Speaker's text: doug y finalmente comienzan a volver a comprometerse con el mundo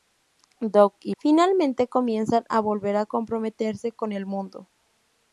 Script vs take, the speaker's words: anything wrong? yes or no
no